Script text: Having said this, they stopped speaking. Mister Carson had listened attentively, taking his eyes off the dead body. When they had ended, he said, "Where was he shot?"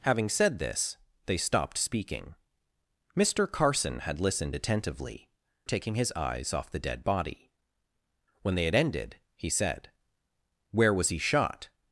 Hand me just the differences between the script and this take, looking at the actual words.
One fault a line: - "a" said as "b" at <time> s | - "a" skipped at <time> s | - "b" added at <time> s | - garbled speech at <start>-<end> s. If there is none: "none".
none